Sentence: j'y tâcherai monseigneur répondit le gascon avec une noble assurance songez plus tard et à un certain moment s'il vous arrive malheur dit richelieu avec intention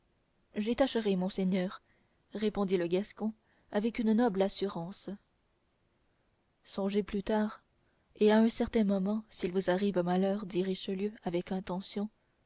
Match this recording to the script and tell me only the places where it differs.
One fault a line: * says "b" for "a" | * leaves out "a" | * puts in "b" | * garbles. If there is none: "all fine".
all fine